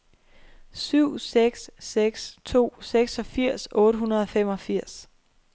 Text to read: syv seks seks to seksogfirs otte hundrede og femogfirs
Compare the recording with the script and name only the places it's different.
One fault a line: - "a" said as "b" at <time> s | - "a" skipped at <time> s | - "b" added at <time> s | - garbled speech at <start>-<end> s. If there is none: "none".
none